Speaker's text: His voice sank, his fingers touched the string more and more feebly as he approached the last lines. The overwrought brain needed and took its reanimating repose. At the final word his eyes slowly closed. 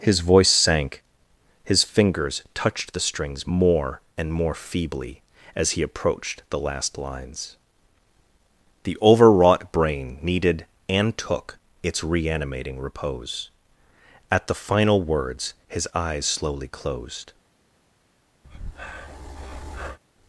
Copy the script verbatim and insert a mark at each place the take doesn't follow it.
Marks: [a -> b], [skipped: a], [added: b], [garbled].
His voice sank, his fingers touched the [string -> strings] more and more feebly as he approached the last lines. The overwrought brain needed and took its reanimating repose. At the final [word -> words] his eyes slowly closed.